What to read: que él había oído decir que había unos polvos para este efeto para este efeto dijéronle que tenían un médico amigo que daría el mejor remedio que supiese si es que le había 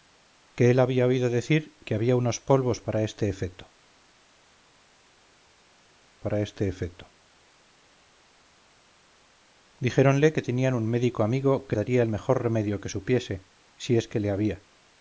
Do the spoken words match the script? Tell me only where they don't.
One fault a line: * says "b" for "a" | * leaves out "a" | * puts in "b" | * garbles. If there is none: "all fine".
all fine